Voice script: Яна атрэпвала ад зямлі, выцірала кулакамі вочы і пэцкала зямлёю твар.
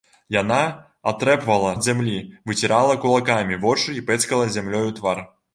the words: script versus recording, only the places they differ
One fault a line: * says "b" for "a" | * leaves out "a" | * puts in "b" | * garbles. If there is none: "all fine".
all fine